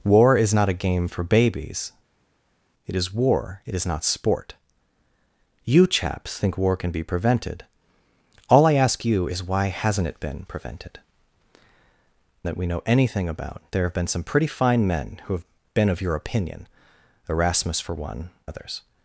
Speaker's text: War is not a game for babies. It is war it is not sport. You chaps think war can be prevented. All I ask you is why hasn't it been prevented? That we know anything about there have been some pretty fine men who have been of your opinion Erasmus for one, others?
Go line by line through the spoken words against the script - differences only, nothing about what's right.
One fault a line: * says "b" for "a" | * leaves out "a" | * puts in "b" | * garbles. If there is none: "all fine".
all fine